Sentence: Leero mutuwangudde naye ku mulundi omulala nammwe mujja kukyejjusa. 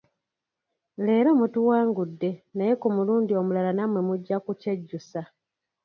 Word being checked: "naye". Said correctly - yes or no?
yes